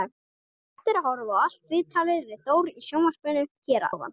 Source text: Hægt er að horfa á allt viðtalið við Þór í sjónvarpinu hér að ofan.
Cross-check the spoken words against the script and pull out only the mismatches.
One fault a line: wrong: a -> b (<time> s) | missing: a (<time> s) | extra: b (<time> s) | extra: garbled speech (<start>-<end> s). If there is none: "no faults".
missing: að (3.9 s)